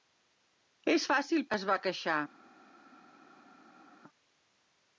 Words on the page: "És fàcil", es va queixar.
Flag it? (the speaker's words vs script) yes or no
no